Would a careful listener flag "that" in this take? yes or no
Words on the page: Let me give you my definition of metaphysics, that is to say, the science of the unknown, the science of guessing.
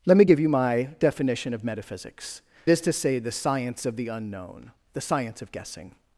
yes